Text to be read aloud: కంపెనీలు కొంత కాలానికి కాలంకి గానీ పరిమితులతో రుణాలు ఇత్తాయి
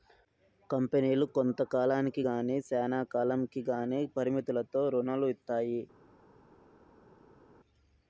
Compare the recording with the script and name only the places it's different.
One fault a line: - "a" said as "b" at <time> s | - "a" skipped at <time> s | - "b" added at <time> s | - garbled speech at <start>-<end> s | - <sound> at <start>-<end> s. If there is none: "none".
- "గానీ శ్యానా" added at 2.3 s